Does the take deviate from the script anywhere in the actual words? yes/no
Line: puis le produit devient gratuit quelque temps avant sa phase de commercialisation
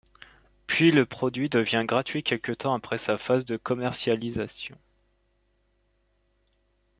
yes